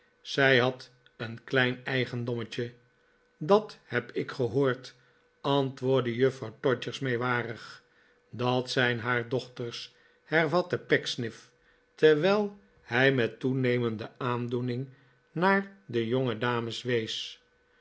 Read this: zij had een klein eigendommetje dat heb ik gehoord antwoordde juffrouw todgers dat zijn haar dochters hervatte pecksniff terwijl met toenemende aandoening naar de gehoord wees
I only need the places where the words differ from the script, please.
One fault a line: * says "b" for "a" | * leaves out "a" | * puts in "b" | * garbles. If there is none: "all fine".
* puts in "meewarig"
* puts in "hij"
* says "jongedames" for "gehoord"